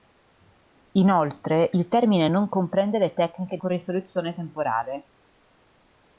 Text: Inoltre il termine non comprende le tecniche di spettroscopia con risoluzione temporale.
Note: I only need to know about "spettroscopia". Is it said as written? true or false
false